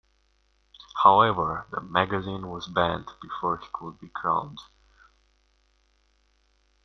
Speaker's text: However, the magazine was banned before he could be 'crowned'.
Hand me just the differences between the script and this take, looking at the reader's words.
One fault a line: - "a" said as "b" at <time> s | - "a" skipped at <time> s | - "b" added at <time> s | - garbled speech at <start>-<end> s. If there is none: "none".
none